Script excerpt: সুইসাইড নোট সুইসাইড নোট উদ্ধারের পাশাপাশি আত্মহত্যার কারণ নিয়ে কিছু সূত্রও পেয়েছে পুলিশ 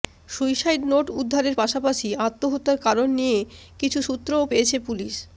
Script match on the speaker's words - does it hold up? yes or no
no